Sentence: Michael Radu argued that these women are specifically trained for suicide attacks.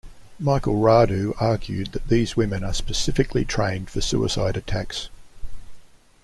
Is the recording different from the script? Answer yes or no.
no